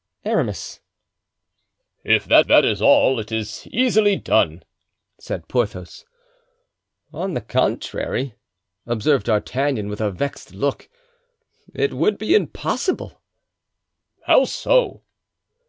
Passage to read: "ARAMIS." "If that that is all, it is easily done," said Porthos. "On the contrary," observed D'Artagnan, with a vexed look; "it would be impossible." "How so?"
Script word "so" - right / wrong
right